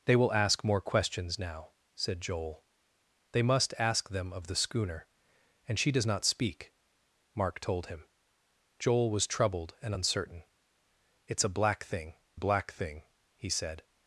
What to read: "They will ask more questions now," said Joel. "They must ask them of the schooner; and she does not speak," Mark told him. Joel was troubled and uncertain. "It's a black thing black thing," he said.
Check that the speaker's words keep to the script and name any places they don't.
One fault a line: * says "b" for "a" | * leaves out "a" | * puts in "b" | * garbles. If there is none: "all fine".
all fine